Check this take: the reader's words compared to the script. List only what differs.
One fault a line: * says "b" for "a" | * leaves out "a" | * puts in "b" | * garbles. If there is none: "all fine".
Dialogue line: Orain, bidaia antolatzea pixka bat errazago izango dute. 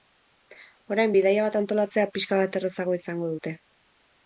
* puts in "bat"